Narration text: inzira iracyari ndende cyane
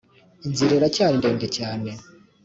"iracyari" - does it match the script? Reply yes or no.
yes